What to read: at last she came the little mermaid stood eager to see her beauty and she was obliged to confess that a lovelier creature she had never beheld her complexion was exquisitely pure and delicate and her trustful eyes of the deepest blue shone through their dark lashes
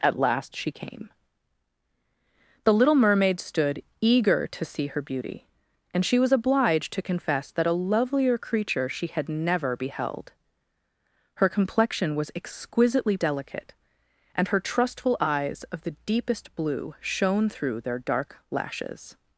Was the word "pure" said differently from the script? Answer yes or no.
yes